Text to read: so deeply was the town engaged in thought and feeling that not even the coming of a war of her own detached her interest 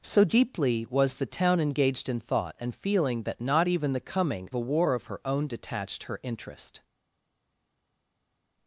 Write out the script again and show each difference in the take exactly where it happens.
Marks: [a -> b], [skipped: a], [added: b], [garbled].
so deeply was the town engaged in thought and feeling that not even the coming [skipped: of] a war of her own detached her interest